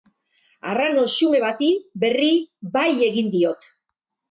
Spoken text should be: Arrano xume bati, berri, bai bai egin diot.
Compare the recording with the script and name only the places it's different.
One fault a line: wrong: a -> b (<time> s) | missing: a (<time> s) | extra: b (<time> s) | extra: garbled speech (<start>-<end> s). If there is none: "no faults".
missing: bai (2.9 s)